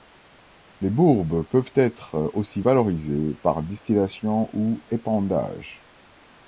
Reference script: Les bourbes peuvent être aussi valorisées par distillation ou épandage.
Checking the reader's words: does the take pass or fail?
pass